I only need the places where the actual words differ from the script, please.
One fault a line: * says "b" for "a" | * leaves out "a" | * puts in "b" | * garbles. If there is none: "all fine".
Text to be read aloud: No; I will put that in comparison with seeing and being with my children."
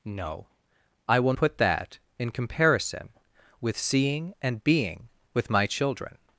all fine